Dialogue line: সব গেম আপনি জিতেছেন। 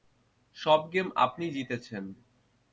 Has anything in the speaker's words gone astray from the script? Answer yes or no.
no